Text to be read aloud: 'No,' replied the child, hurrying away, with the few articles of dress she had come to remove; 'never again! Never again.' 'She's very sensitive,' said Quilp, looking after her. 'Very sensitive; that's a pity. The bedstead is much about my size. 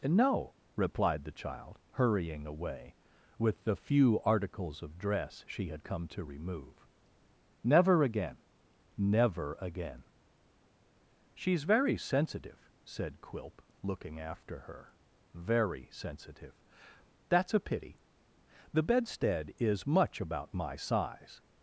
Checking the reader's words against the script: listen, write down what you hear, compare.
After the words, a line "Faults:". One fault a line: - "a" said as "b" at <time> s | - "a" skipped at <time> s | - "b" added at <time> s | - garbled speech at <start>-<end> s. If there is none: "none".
'No,' replied the child, hurrying away, with the few articles of dress she had come to remove; 'never again! Never again.' 'She's very sensitive,' said Quilp, looking after her. 'Very sensitive; that's a pity. The bedstead is much about my size.
Faults:
none